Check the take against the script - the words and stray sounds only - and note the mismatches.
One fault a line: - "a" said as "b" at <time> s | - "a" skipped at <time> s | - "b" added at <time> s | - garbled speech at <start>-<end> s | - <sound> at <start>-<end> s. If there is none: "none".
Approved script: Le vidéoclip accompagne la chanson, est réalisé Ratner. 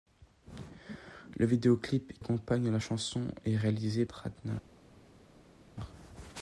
none